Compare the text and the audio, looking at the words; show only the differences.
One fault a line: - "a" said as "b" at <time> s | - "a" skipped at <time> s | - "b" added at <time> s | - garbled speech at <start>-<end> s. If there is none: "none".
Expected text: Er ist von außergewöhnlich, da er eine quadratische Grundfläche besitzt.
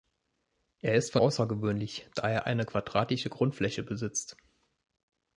none